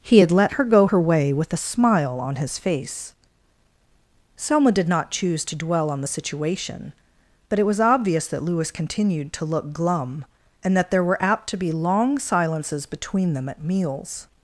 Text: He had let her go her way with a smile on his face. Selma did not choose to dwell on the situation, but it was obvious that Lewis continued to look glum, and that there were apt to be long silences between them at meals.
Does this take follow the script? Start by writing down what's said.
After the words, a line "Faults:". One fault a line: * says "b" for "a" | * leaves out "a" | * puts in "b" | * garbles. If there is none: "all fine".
He had let her go her way with a smile on his face. Selma did not choose to dwell on the situation, but it was obvious that Lewis continued to look glum, and that there were apt to be long silences between them at meals.
Faults:
all fine